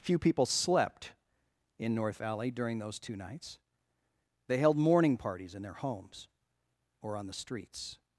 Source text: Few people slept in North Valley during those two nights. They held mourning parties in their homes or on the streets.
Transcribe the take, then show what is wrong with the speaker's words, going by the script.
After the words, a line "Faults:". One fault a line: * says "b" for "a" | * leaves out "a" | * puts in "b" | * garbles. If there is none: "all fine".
Few people slept in North Valley during those two nights. They held mourning parties in their homes or on the streets.
Faults:
all fine